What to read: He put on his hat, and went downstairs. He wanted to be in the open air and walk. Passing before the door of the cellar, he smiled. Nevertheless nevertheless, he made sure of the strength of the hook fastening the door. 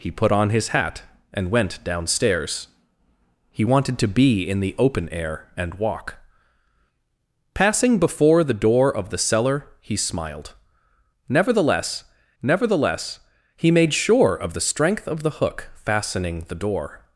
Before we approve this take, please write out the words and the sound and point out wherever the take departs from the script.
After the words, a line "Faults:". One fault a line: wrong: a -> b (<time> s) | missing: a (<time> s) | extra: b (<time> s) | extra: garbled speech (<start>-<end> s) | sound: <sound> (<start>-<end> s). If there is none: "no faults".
He put on his hat, and went downstairs. He wanted to be in the open air and walk. Passing before the door of the cellar, he smiled. Nevertheless nevertheless, he made sure of the strength of the hook fastening the door.
Faults:
no faults